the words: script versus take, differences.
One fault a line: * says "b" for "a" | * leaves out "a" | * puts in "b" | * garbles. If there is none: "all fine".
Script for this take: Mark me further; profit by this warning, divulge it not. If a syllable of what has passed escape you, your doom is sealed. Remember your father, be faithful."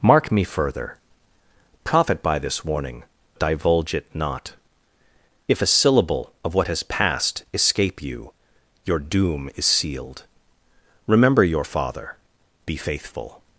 all fine